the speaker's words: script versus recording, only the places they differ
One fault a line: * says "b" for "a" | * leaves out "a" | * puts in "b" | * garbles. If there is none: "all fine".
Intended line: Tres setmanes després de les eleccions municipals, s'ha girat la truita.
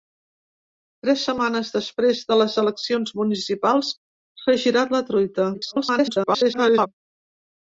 * garbles